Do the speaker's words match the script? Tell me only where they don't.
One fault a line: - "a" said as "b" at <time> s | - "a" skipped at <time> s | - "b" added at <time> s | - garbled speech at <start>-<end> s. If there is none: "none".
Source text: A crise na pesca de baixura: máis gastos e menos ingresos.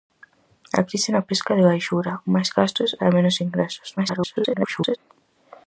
- garbled speech at 4.0-5.0 s